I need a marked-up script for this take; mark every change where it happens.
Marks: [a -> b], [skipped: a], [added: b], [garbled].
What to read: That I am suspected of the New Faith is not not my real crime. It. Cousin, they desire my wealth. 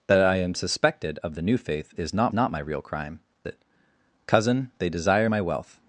That I am suspected of the New Faith is not not my real crime. It. Cousin, they desire my wealth.